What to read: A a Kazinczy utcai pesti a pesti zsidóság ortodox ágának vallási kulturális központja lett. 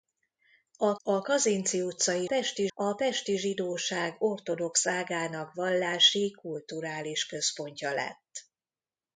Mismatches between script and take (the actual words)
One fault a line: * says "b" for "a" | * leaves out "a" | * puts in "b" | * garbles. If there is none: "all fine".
all fine